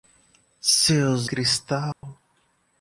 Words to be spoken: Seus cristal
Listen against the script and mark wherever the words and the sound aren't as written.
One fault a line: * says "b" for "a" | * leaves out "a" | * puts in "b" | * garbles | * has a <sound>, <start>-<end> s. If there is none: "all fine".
* has a dropout, 1.9-2.0 s